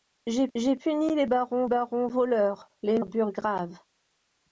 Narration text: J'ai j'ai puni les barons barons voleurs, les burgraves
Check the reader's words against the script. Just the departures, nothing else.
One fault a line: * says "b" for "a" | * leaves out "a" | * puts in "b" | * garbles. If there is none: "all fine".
all fine